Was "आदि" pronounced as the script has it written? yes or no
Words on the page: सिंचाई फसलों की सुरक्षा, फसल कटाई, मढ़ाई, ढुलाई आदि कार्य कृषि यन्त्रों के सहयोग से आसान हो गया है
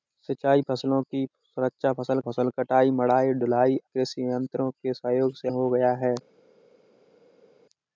no